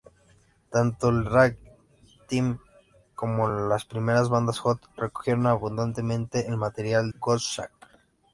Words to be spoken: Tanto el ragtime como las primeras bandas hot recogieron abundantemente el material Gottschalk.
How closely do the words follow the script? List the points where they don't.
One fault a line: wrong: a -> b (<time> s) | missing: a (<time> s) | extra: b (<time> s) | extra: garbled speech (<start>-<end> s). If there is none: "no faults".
no faults